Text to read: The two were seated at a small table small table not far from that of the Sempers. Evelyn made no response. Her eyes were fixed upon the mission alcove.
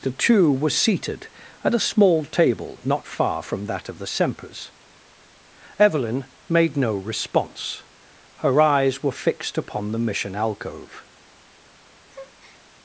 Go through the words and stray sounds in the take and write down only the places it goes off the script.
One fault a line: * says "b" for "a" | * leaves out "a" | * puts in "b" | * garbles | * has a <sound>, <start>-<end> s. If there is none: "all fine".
* leaves out "small table"
* has a breath, 12.1-12.6 s